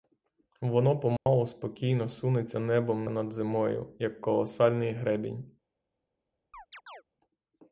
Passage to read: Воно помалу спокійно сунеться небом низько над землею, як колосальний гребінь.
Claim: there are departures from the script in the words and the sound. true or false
true